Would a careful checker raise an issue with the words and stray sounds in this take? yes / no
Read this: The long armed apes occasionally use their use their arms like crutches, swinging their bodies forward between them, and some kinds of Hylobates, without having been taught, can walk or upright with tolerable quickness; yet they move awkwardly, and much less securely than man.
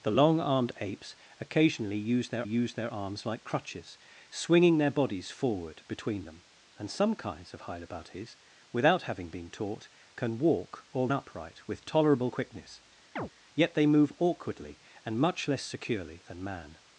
yes